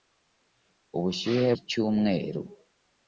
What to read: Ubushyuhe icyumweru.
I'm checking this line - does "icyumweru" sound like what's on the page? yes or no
yes